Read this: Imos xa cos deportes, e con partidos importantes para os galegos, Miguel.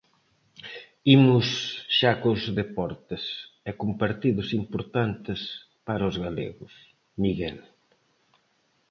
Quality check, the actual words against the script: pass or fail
pass